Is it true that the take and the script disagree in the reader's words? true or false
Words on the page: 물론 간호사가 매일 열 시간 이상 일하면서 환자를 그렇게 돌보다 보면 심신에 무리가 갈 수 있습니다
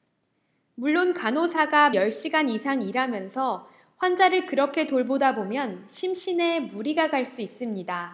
true